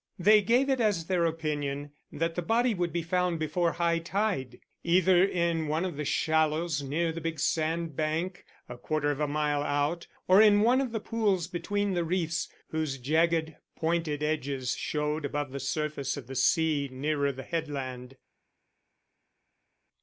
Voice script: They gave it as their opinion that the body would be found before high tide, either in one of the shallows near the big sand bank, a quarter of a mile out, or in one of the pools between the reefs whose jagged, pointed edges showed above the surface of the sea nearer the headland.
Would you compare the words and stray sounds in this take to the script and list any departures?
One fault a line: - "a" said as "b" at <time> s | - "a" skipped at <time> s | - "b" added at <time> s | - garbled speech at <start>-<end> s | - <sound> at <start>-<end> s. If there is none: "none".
none